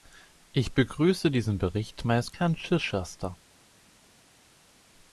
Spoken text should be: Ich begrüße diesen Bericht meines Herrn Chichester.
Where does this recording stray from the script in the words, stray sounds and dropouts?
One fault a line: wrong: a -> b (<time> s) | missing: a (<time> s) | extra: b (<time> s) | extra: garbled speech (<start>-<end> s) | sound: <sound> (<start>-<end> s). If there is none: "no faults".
no faults